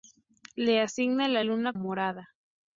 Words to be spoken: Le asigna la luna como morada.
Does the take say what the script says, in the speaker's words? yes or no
no